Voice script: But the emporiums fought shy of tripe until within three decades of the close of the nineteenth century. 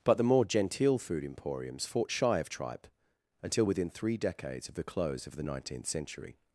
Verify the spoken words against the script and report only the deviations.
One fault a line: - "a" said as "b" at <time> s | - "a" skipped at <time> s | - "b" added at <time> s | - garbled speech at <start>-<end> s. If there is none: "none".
- "more genteel food" added at 0.2 s